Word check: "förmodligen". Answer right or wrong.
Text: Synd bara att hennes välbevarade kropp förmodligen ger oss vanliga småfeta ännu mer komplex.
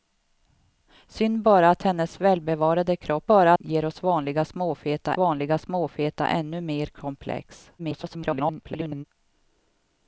wrong